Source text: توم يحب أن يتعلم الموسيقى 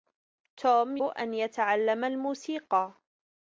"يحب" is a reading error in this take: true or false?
true